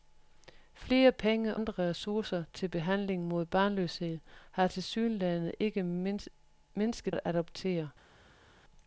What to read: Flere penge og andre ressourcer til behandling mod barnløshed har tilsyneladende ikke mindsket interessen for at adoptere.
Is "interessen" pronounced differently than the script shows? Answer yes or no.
yes